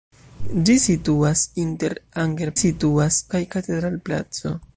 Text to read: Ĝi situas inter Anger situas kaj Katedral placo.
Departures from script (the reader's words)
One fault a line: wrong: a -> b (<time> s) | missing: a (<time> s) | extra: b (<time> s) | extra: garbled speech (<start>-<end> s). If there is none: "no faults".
no faults